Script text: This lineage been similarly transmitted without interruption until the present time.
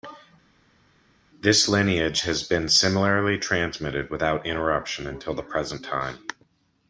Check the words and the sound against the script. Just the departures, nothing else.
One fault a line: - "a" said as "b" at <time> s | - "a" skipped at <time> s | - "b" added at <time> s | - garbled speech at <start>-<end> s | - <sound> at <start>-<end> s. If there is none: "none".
- "has" added at 2.2 s